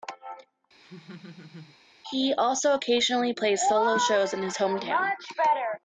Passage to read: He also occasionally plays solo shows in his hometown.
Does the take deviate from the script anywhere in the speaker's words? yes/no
no